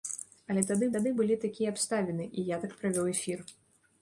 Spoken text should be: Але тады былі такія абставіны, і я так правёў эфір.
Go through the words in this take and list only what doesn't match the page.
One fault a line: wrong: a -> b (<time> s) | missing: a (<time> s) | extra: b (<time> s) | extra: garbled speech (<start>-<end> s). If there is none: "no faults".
extra: тады (0.9 s)